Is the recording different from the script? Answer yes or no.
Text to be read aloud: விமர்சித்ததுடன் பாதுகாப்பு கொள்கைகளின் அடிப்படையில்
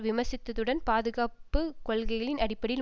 no